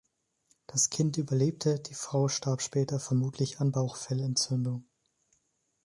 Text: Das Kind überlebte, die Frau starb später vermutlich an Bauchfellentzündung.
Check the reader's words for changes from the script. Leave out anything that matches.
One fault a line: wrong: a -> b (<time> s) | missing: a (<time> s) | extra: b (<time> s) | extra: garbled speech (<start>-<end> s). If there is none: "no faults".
no faults